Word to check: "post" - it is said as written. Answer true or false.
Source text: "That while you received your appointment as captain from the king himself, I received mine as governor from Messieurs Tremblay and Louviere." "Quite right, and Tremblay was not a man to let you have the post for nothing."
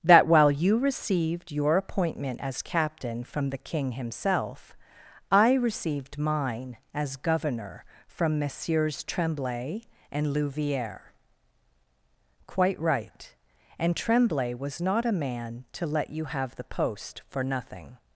true